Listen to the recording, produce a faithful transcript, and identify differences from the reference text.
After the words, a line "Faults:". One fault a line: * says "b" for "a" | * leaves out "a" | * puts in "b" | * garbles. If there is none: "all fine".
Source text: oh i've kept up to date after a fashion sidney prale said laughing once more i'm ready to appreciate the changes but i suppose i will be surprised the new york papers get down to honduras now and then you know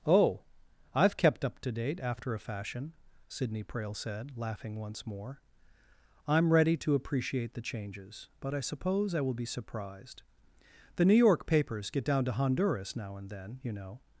oh i've kept up to date after a fashion sidney prale said laughing once more i'm ready to appreciate the changes but i suppose i will be surprised the new york papers get down to honduras now and then you know
Faults:
all fine